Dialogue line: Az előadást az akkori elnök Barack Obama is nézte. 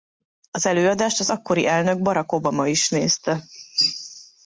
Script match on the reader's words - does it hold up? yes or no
yes